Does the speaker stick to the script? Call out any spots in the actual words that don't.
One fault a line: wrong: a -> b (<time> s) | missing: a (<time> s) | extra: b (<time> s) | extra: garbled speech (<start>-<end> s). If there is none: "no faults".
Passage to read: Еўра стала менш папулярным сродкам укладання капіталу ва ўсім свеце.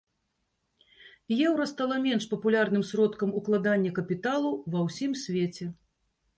no faults